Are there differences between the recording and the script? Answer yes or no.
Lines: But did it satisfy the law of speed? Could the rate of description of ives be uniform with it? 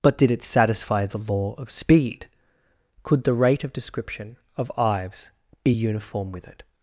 no